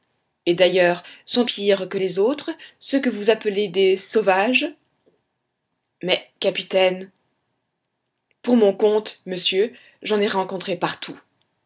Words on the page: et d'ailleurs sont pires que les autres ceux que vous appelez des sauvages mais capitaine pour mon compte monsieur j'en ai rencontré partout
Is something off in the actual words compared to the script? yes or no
no